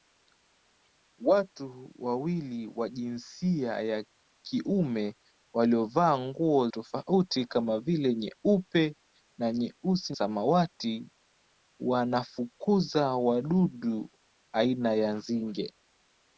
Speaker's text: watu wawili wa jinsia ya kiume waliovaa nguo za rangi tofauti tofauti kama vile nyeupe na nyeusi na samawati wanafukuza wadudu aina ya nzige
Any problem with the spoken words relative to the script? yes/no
yes